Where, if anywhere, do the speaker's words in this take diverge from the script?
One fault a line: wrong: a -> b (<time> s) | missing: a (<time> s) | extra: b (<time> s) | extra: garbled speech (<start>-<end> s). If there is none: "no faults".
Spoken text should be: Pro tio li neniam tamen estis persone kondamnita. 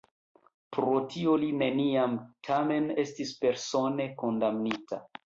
no faults